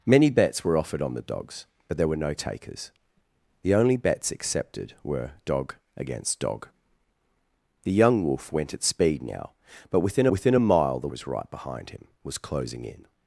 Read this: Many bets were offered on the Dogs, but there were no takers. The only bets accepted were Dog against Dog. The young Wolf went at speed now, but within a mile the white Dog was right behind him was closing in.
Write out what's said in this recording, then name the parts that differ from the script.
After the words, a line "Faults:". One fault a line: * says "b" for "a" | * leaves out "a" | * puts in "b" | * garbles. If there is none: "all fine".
Many bets were offered on the Dogs, but there were no takers. The only bets accepted were Dog against Dog. The young Wolf went at speed now, but within within a mile the was right behind him was closing in.
Faults:
* puts in "within"
* leaves out "white Dog"